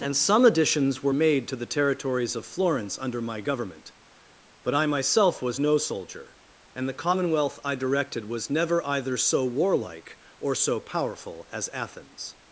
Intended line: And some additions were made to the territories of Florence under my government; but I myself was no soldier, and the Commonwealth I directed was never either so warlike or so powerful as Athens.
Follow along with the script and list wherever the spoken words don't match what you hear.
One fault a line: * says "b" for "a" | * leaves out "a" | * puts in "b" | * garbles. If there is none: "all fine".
all fine